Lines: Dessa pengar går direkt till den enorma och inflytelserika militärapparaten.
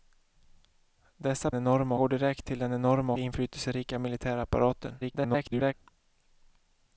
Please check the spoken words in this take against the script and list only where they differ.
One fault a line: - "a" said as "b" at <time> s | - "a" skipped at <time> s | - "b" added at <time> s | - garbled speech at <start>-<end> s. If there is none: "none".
- "pengar" said as "enorma" at 1.5 s
- "och" skipped at 3.1 s
- garbled speech at 5.0-5.7 s